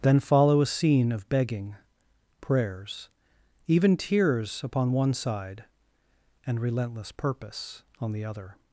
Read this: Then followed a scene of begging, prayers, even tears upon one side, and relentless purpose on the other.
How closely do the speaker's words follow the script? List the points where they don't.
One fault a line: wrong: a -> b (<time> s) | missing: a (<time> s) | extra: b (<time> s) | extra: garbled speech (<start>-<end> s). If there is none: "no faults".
wrong: followed -> follow (0.2 s)